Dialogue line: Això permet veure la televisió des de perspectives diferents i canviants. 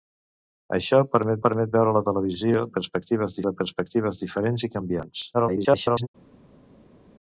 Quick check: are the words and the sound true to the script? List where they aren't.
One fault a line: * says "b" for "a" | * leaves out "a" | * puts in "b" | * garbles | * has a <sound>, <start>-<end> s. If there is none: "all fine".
* puts in "permet"
* says "perspectives" for "des"
* garbles